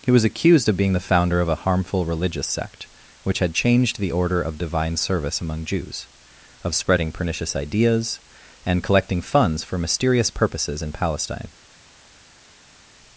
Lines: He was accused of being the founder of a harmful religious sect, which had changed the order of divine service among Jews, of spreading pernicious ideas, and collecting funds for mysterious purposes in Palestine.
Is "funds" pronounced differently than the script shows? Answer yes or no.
no